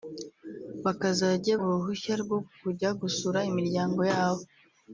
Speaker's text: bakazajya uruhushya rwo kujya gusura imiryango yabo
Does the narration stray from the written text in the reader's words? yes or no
no